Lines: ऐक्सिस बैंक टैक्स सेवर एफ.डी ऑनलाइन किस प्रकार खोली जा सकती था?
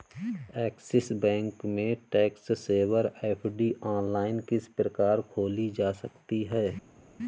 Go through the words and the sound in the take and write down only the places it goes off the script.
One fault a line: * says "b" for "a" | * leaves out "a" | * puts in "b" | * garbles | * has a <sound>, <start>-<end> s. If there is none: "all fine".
* puts in "में"
* says "है" for "था"